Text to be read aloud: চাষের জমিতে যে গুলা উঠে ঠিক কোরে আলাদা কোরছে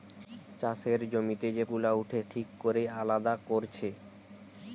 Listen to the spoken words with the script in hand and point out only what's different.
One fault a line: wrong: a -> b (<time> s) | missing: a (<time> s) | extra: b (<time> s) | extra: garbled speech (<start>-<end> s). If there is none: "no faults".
no faults